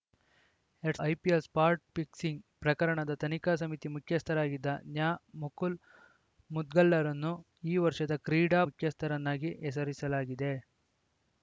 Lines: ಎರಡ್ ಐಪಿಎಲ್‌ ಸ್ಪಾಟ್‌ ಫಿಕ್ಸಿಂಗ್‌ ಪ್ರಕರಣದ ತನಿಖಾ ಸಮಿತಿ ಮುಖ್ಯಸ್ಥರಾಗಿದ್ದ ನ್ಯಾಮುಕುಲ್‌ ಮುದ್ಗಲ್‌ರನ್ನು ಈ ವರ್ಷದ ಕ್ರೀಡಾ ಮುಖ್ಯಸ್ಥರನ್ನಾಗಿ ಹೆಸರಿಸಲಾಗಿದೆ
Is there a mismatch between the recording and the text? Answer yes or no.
no